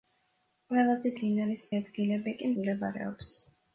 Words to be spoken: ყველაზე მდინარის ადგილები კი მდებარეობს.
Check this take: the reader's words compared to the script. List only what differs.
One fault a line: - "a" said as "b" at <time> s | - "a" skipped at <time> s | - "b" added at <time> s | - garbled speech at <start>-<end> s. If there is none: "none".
none